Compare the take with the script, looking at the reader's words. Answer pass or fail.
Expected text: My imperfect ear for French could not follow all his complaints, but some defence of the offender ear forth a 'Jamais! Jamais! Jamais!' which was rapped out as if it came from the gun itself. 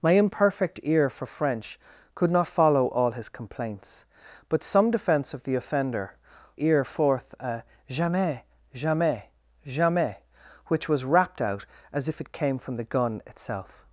pass